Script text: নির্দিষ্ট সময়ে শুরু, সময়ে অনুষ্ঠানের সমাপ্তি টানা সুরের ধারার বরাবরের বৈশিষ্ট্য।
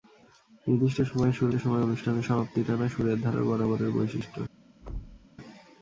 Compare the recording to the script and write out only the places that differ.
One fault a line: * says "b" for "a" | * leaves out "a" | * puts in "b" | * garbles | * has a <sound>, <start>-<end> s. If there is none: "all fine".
* has a thud, 4.8-5.3 s